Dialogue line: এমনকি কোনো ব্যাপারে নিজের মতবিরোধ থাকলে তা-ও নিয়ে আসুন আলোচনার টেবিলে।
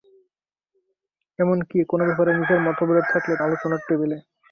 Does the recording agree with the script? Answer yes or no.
no